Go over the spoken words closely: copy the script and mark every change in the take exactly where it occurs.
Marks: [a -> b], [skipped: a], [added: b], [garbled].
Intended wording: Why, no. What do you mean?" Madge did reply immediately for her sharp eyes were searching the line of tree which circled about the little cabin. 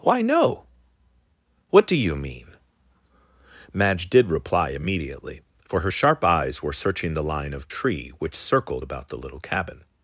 Why, no. What do you mean?" Madge did reply immediately for her sharp eyes were searching the line of tree which circled about the little cabin.